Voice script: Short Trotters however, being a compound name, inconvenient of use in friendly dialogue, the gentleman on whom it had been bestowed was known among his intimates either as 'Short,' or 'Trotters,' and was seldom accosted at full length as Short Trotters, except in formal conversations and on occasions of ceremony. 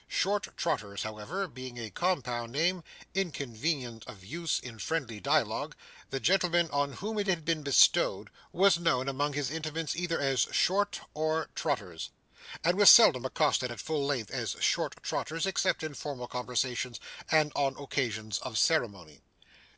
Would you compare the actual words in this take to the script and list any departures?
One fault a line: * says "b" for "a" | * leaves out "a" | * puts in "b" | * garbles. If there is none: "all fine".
all fine